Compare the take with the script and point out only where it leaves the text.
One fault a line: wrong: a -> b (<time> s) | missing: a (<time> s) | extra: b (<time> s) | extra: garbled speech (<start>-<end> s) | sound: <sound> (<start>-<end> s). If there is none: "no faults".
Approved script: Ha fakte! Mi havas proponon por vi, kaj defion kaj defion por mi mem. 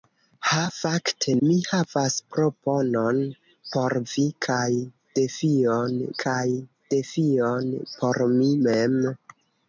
no faults